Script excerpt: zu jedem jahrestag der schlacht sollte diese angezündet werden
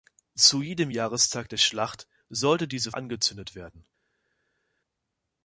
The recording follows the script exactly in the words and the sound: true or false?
true